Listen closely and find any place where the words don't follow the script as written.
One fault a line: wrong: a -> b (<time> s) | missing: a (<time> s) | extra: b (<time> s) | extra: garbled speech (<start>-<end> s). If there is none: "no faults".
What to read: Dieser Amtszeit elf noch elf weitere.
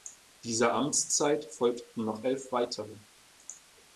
wrong: elf -> folgten (1.5 s)